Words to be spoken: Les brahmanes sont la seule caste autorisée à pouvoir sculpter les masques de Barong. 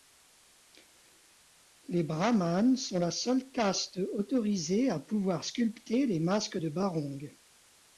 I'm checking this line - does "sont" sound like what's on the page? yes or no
yes